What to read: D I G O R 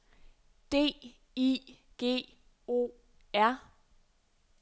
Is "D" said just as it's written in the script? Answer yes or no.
yes